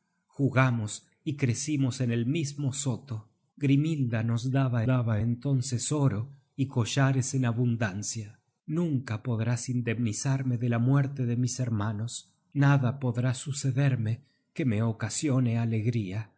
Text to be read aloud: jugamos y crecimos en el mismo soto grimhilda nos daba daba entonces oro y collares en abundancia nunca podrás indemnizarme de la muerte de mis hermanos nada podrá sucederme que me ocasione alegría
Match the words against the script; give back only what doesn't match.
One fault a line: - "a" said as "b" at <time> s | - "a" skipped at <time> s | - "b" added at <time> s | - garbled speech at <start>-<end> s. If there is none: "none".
none